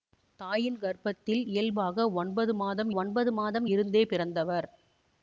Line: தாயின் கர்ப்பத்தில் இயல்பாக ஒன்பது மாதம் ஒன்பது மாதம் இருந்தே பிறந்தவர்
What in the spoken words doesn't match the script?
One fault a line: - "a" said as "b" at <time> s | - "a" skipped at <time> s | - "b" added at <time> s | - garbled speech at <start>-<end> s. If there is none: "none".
none